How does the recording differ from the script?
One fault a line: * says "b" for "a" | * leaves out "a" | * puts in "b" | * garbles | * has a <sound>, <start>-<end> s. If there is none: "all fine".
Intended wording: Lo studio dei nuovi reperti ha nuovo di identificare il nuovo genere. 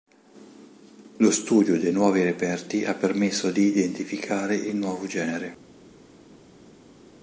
* says "permesso" for "nuovo"